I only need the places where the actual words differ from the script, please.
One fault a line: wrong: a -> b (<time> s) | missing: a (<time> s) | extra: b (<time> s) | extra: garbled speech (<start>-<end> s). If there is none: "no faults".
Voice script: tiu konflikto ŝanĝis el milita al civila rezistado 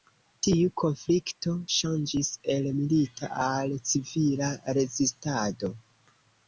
no faults